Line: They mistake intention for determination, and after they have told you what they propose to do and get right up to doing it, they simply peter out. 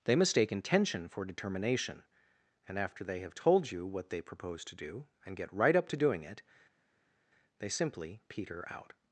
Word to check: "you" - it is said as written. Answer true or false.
true